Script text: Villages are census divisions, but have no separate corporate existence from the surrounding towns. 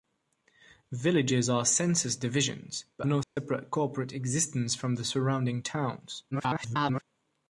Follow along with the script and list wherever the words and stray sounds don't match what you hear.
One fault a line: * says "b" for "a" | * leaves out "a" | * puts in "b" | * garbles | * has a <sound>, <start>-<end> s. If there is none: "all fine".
* leaves out "have"
* has a dropout, 3.2-3.4 s
* garbles